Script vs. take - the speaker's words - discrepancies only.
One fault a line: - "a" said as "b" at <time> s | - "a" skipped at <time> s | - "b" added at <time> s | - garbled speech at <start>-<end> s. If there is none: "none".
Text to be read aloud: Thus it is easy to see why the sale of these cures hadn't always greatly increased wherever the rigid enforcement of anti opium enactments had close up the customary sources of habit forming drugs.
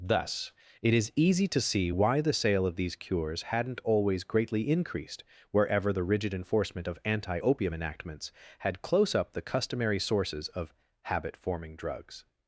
none